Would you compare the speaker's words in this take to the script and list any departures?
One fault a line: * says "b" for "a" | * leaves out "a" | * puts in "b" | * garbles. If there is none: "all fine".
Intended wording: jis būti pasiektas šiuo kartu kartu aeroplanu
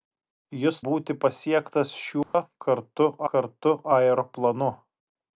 all fine